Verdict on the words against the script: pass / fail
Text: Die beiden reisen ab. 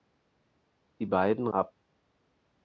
fail